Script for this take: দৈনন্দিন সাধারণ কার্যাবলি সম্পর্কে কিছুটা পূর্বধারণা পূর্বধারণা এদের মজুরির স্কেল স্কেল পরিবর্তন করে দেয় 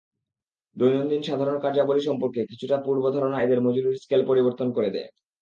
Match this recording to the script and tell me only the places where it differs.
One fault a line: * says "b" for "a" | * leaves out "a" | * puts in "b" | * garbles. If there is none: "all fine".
* leaves out "পূর্বধারণা"
* leaves out "স্কেল"